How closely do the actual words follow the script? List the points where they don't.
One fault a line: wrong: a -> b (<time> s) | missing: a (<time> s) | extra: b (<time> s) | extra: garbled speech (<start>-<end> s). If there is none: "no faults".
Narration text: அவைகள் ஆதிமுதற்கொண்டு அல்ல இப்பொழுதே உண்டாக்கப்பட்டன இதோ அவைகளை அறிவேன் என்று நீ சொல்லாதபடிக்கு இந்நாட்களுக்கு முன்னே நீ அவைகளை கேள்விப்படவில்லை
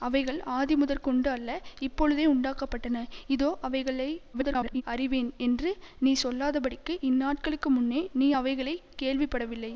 extra: garbled speech (4.3-4.8 s)